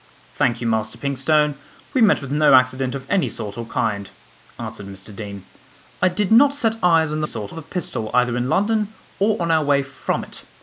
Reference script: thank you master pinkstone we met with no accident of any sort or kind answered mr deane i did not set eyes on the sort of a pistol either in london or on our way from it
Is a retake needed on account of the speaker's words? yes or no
no